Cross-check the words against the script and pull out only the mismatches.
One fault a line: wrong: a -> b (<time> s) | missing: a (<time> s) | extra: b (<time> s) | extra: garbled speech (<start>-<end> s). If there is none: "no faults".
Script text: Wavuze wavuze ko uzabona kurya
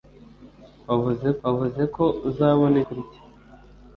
no faults